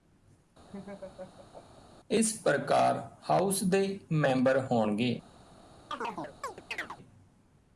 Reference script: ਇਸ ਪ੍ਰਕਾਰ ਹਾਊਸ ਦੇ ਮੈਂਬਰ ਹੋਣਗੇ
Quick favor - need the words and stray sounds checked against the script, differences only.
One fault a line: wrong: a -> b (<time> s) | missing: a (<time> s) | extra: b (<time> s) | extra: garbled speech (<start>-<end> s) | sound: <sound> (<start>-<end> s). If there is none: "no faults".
sound: laugh (0.7-1.8 s)
sound: chirp (5.9-7.0 s)